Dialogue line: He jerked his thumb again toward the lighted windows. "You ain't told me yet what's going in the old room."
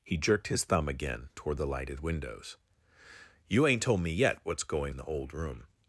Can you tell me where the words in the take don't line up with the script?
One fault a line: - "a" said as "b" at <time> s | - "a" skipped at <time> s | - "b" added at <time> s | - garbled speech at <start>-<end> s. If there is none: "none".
none